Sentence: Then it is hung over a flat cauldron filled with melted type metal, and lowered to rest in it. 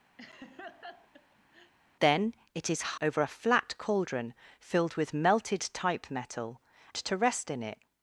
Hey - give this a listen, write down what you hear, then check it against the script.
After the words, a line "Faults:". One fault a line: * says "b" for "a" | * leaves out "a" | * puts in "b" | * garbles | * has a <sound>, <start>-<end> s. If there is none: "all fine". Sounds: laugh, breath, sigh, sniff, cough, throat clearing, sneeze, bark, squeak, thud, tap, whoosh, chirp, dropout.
Then it is over a flat cauldron filled with melted type metal, to rest in it.
Faults:
* has a laugh, 0.2-1.7 s
* leaves out "hung"
* leaves out "and lowered"